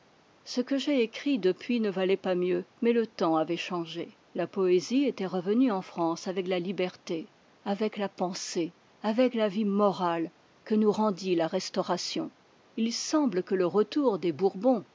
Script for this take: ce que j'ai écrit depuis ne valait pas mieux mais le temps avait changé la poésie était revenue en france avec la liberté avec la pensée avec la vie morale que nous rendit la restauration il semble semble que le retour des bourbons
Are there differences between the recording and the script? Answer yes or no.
yes